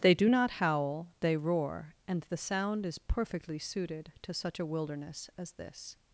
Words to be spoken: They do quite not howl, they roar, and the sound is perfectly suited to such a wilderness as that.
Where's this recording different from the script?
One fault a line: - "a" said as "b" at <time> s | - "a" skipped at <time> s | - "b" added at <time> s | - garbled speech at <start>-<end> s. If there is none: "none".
- "quite" skipped at 0.3 s
- "that" said as "this" at 5.5 s